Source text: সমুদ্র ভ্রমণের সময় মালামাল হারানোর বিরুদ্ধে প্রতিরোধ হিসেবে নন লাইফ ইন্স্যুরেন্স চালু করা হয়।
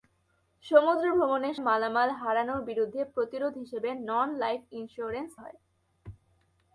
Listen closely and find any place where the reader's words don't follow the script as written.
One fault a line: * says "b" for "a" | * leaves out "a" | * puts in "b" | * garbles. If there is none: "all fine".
* leaves out "সময়"
* leaves out "চালু করা"